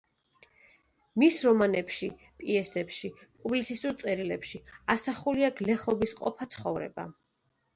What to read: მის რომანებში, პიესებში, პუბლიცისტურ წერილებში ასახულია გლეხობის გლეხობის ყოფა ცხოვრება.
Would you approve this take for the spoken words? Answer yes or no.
no